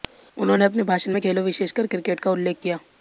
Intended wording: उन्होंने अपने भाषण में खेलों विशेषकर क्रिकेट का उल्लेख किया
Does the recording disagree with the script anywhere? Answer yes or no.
no